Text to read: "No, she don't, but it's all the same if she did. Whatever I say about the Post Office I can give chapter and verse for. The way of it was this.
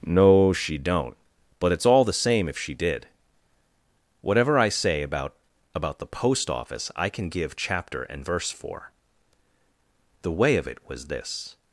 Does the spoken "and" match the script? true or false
true